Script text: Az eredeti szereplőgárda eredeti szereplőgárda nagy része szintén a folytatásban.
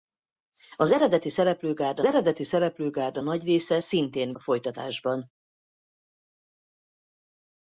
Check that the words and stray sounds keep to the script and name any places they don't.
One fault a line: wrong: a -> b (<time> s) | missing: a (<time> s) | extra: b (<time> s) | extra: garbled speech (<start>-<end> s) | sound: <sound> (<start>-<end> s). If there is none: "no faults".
no faults